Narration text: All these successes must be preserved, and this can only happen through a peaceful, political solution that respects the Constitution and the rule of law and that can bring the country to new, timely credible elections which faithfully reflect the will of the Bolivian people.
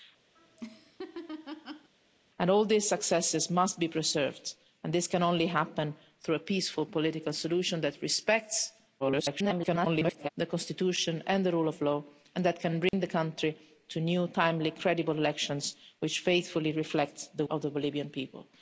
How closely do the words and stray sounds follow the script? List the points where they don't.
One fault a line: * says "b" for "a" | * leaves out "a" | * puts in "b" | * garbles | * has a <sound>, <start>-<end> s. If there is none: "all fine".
* has a laugh, 0.3-1.9 s
* garbles
* has a dropout, 12.9-12.9 s
* leaves out "will"